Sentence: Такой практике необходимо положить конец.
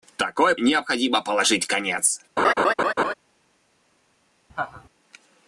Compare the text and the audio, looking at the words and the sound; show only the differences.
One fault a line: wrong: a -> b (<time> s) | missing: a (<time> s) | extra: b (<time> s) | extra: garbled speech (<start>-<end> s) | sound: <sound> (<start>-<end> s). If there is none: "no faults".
missing: практике (0.6 s)
sound: laugh (2.4-3.1 s)
sound: laugh (4.5-4.9 s)